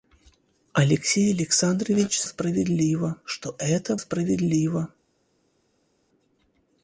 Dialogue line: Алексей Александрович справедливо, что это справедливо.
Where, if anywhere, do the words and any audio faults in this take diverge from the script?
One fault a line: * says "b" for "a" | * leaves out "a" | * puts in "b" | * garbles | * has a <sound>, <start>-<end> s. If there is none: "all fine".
all fine